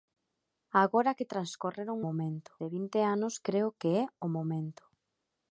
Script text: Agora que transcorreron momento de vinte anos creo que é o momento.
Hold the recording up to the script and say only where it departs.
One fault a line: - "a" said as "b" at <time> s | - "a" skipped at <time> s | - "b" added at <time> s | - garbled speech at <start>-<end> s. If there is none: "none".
none